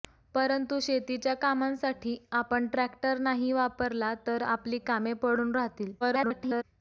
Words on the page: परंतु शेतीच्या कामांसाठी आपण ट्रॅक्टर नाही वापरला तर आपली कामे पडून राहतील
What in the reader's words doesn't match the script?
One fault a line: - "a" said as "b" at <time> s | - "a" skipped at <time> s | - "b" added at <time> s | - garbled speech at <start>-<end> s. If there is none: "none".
- garbled speech at 6.0-6.6 s